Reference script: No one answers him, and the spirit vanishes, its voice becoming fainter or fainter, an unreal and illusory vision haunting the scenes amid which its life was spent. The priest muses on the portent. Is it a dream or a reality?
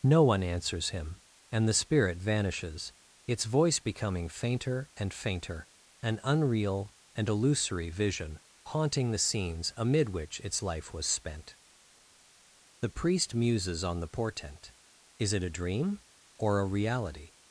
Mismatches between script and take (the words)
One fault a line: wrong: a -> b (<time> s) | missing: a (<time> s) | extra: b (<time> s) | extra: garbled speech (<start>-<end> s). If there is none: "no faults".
wrong: or -> and (5.0 s)